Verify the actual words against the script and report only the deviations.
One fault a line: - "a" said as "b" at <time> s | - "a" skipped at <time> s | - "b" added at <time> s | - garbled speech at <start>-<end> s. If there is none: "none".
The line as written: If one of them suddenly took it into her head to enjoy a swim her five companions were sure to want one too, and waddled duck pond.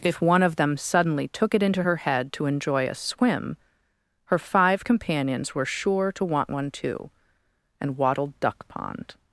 none